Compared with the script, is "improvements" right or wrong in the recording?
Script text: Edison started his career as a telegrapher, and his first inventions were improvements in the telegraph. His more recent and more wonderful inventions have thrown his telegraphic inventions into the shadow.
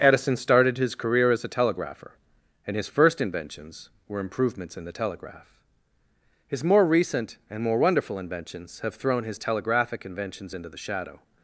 right